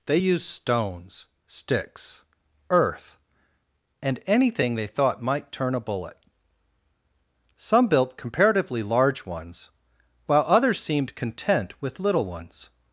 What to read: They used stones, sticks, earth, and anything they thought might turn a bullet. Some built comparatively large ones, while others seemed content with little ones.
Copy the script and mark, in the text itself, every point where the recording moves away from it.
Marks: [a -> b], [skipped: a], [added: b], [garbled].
They used stones, sticks, earth, and anything they thought might turn a bullet. Some built comparatively large ones, while others seemed content with little ones.